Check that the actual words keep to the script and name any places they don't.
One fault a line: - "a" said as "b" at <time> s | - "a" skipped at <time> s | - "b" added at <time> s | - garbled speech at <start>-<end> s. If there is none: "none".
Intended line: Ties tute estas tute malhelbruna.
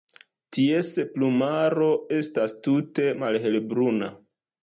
- "tute" said as "plumaro" at 1.2 s